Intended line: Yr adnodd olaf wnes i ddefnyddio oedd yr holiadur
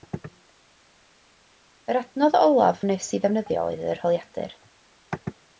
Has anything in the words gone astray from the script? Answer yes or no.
no